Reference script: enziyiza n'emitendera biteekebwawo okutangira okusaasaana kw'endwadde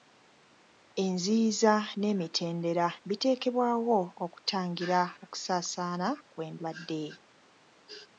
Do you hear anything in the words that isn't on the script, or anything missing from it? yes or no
no